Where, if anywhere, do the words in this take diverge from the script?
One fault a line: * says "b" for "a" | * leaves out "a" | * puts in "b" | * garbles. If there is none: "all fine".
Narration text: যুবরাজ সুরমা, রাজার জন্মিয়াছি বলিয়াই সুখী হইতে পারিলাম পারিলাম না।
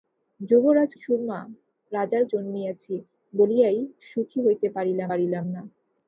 all fine